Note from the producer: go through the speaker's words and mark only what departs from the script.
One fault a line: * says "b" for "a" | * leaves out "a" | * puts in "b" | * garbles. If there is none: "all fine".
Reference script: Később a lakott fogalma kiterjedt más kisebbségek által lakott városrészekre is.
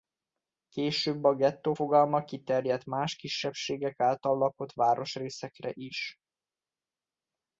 * says "gettó" for "lakott"